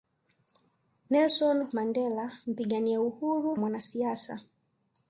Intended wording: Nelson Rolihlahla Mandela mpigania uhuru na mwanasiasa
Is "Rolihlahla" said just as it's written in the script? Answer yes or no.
no